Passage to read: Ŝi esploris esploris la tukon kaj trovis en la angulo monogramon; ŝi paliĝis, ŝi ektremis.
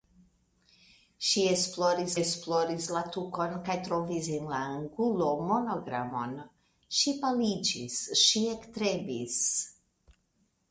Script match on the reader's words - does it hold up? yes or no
yes